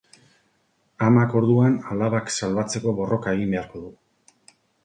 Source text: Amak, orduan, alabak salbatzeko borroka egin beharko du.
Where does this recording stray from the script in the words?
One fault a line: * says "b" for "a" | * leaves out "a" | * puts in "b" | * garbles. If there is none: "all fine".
all fine